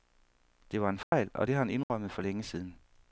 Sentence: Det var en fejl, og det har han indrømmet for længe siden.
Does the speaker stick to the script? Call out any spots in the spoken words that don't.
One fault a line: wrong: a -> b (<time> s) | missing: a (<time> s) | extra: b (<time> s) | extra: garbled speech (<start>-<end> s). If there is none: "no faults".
no faults